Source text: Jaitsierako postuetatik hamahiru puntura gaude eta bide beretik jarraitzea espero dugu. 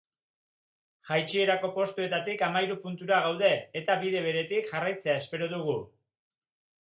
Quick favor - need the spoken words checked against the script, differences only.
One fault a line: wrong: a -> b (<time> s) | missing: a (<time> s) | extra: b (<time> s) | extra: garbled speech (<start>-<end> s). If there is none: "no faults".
no faults